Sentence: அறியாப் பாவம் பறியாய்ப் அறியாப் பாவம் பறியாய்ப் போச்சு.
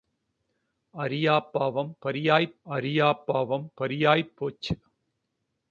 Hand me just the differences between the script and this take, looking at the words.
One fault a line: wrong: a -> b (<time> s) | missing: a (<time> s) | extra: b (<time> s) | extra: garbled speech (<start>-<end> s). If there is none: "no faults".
no faults